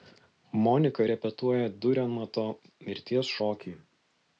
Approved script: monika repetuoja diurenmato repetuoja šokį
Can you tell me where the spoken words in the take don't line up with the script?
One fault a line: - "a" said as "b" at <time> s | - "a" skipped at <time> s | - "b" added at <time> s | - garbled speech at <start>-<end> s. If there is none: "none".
- "repetuoja" said as "mirties" at 2.9 s